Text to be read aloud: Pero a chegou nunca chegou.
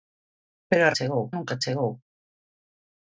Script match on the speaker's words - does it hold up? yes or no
yes